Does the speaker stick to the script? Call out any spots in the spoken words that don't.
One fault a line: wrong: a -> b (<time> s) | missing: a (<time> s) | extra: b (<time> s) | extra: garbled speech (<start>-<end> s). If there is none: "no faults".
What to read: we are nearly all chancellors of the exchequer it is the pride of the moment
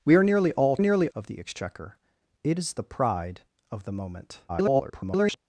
wrong: chancellors -> nearly (0.8 s)
extra: garbled speech (4.5-5.4 s)